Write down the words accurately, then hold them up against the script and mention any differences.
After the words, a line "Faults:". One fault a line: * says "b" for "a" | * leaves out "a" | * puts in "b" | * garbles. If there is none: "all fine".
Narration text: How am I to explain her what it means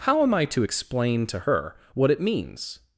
How am I to explain to her what it means
Faults:
* puts in "to"